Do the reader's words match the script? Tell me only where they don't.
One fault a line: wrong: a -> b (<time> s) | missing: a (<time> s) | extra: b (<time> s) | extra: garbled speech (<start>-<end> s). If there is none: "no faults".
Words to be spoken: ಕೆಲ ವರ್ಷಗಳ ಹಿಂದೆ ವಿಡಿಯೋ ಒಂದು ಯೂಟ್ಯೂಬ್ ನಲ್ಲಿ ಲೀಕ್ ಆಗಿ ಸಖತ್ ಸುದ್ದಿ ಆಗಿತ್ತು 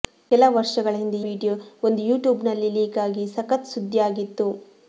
no faults